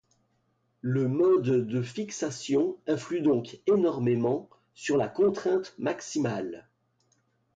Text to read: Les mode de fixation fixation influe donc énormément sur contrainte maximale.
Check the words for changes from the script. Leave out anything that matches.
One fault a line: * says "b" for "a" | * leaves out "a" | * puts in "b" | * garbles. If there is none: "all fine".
* says "Le" for "Les"
* leaves out "fixation"
* puts in "la"